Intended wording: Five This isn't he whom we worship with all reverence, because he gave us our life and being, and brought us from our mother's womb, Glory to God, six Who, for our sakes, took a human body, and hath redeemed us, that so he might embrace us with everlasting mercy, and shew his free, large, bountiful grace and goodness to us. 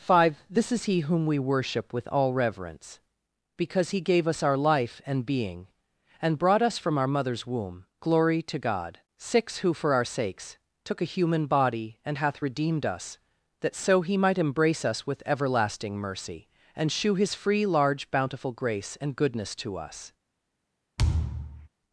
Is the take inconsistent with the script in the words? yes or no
yes